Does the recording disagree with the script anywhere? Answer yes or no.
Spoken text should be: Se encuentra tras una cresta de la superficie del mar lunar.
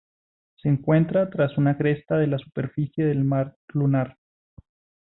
no